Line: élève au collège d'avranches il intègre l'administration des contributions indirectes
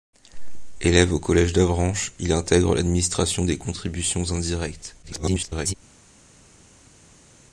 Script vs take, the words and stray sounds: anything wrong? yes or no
yes